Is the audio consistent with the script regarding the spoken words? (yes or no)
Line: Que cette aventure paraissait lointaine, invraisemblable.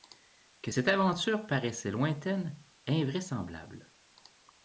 yes